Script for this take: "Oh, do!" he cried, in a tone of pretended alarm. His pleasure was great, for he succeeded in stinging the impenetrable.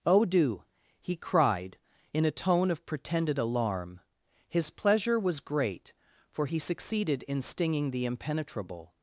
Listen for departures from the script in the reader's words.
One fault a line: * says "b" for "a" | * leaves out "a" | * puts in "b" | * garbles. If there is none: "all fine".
all fine